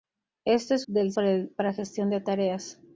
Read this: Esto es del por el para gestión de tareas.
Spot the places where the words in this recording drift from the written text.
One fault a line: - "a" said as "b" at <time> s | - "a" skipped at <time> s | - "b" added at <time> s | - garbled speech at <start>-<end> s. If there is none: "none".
none